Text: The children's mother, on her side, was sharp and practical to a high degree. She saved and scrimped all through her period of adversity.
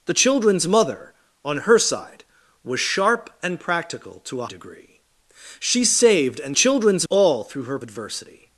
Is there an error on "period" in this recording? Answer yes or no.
yes